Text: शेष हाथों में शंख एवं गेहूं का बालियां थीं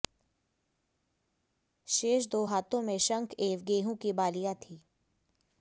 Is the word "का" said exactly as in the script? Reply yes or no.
no